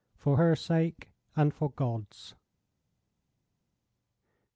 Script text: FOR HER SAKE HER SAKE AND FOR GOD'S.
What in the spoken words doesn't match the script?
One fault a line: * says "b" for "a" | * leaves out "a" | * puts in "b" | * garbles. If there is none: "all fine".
* leaves out "HER SAKE"